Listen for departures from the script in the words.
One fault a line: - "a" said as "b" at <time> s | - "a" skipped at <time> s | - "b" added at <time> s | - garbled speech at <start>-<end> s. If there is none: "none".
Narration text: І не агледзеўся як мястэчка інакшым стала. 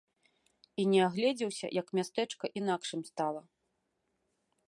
none